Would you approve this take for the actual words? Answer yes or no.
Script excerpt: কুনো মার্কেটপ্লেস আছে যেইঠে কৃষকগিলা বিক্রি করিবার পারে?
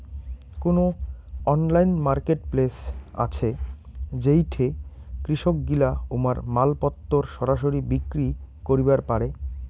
no